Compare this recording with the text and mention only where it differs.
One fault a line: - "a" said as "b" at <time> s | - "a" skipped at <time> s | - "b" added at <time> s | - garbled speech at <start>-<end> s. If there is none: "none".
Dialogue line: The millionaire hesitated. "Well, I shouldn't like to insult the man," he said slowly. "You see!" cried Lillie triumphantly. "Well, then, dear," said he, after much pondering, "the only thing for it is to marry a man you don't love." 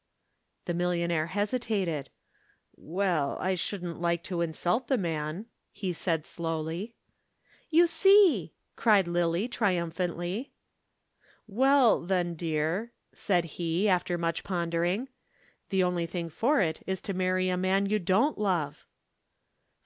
none